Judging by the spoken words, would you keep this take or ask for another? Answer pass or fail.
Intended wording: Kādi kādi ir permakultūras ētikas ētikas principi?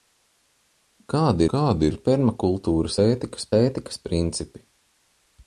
pass